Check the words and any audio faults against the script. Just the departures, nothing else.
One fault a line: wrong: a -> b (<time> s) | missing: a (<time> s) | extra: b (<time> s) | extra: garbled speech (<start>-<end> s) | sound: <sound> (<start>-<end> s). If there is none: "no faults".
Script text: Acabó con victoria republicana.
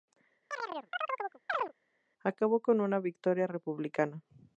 sound: chirp (0.5-1.7 s)
extra: una (2.8 s)